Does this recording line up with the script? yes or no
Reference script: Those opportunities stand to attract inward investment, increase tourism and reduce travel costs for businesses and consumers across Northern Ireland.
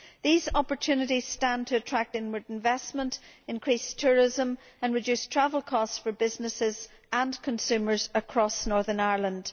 no